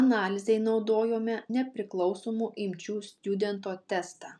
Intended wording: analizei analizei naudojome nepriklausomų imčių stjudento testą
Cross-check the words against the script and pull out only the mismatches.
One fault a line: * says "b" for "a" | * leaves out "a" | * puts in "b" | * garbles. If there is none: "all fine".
* leaves out "analizei"